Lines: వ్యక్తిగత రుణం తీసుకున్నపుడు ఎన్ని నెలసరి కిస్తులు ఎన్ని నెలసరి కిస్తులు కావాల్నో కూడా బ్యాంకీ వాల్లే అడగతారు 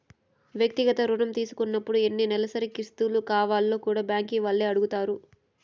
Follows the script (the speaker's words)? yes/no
no